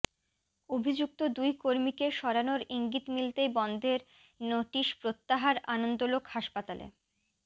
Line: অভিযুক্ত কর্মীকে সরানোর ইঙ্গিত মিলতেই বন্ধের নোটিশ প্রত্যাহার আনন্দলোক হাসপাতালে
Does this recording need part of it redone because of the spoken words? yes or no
yes